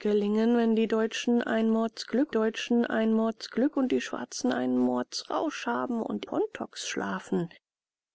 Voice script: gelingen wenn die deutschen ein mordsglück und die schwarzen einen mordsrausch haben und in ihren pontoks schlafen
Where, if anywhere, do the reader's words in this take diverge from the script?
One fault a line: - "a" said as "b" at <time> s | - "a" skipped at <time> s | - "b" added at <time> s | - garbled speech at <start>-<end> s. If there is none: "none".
- "deutschen ein mordsglück" added at 2.3 s
- "in ihren" skipped at 6.2 s